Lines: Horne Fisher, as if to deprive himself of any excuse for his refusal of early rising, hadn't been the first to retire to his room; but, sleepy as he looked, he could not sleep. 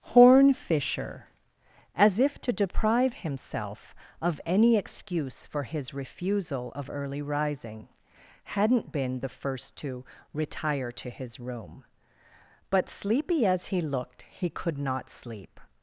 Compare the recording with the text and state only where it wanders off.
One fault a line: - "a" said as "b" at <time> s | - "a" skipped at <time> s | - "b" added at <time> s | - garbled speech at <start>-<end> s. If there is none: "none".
none